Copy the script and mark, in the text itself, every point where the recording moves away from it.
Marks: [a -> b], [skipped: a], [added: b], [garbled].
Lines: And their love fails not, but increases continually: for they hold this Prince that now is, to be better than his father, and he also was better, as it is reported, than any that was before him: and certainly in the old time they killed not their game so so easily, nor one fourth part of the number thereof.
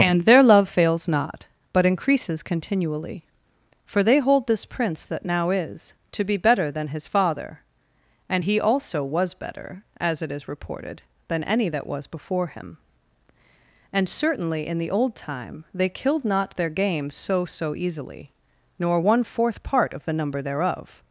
And their love fails not, but increases continually: for they hold this Prince that now is, to be better than his father, and he also was better, as it is reported, than any that was before him: and certainly in the old time they killed not their game so so easily, nor one fourth part of the number thereof.